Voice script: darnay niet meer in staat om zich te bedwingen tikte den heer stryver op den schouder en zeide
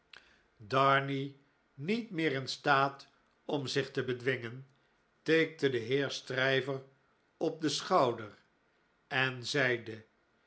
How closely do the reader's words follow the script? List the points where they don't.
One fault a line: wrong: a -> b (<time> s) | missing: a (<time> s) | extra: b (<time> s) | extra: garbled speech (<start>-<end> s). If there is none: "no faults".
no faults